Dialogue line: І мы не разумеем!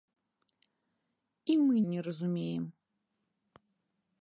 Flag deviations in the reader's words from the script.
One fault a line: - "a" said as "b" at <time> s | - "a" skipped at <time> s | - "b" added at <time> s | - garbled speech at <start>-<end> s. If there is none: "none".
none